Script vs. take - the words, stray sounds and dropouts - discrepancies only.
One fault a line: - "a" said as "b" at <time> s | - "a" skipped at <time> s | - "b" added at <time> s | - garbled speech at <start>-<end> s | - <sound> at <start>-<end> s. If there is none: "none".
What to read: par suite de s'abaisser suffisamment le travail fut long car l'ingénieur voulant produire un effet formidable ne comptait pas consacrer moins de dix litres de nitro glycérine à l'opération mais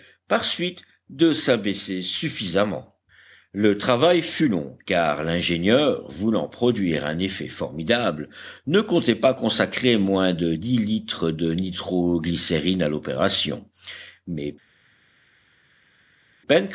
none